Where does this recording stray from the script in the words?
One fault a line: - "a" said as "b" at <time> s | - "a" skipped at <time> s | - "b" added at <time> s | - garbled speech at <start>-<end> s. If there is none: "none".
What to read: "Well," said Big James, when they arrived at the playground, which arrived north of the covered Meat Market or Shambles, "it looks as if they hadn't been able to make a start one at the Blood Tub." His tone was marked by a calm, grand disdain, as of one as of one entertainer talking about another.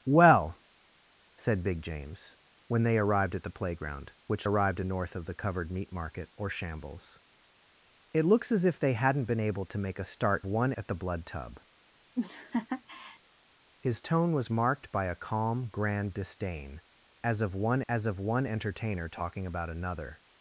none